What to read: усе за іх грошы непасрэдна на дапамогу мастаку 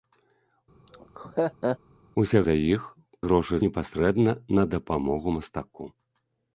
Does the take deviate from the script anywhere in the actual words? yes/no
no